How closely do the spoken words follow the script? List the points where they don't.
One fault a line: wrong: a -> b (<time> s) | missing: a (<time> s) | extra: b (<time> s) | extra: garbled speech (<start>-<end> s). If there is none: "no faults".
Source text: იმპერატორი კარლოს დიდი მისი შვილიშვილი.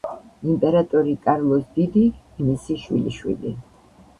no faults